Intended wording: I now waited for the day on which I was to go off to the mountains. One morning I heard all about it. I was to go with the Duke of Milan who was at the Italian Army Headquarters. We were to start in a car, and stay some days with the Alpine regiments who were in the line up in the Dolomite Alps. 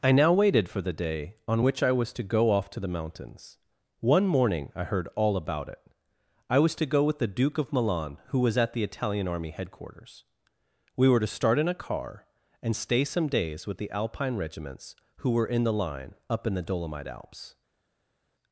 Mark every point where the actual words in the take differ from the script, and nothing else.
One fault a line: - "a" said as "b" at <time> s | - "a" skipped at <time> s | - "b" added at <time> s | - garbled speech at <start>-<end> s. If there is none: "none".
none